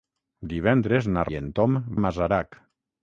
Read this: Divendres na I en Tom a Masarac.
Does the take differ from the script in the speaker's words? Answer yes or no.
no